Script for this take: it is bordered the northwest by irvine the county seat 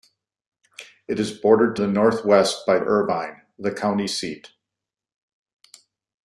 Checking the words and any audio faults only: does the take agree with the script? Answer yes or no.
yes